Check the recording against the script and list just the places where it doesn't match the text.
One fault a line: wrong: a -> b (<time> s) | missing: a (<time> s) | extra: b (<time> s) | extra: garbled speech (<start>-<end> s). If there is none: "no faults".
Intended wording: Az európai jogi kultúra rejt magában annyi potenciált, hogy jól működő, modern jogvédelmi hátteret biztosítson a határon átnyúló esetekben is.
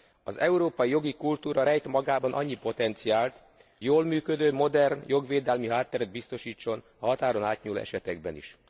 missing: hogy (3.4 s)